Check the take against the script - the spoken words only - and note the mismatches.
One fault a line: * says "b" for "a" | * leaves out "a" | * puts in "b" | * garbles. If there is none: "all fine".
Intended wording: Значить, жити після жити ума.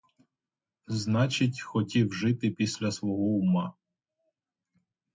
* puts in "хотів"
* says "свого" for "жити"